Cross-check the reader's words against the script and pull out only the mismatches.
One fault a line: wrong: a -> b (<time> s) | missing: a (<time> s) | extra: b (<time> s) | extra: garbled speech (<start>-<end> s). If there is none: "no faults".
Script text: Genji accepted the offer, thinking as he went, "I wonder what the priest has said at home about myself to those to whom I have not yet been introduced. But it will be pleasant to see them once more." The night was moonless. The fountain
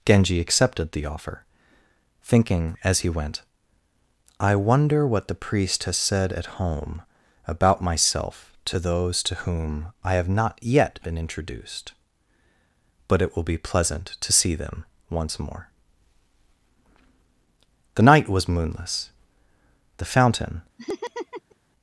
no faults